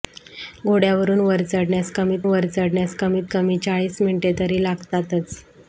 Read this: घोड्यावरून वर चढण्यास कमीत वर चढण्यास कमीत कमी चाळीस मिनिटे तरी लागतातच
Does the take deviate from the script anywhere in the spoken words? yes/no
no